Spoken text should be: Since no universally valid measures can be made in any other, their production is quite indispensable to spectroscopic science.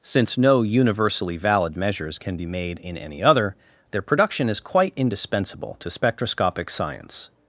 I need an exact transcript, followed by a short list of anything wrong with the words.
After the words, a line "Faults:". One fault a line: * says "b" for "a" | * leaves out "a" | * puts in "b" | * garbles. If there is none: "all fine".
Since no universally valid measures can be made in any other, their production is quite indispensable to spectroscopic science.
Faults:
all fine